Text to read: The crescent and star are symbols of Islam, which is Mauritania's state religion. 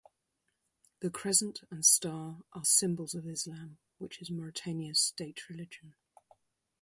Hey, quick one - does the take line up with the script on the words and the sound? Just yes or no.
yes